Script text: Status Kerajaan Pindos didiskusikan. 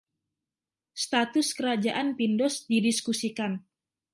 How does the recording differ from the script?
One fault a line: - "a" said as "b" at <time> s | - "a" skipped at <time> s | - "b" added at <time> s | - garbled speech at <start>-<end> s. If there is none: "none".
none